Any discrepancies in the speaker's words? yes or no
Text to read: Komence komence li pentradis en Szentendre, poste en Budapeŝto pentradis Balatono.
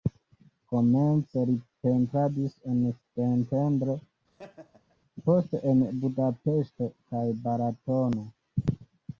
yes